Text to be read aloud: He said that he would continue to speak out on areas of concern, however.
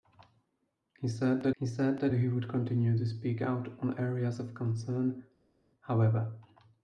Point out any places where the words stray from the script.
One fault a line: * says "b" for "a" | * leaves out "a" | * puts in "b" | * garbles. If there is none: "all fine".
* puts in "said that he"